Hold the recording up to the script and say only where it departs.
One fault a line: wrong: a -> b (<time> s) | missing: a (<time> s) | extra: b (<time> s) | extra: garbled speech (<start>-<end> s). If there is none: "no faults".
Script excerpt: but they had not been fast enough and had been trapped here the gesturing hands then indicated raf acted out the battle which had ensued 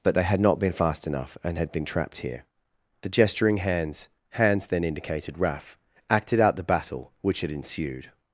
extra: hands (4.3 s)